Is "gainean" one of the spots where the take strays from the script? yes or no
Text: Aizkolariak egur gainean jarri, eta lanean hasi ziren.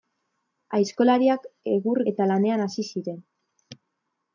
yes